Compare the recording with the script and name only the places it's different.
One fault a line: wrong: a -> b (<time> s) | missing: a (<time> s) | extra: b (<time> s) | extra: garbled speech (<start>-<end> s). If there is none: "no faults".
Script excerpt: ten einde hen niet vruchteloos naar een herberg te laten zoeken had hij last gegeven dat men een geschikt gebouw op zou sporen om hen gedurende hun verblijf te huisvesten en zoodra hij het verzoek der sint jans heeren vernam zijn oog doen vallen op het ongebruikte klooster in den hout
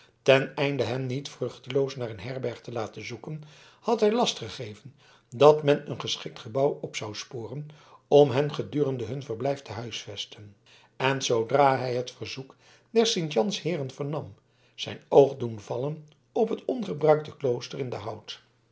no faults